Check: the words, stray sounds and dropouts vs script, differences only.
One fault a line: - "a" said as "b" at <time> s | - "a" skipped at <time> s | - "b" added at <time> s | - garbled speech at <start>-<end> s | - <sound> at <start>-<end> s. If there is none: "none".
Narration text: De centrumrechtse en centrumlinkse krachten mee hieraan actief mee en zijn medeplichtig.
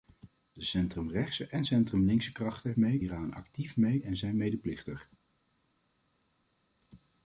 none